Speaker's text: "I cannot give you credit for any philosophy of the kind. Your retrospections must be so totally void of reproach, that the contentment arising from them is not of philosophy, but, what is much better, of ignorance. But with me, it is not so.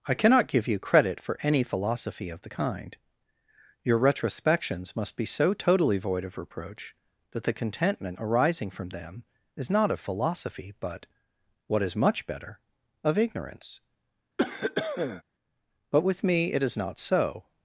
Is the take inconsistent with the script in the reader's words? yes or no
no